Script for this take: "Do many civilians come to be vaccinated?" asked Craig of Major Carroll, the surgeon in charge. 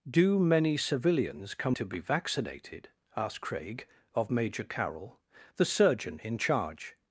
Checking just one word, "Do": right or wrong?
right